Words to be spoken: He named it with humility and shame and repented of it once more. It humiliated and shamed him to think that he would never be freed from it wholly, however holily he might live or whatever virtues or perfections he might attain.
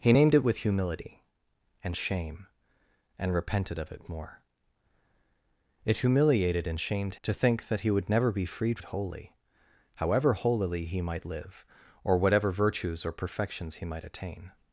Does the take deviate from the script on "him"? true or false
true